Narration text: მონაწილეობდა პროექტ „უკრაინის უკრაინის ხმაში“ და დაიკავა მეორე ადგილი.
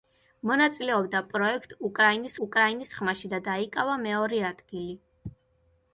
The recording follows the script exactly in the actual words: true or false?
true